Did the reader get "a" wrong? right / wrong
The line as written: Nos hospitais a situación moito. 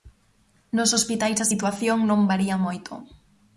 right